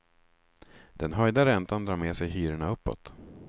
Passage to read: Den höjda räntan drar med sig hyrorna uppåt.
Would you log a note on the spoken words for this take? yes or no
no